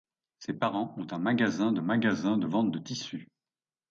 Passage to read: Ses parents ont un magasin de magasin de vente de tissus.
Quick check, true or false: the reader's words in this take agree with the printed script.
true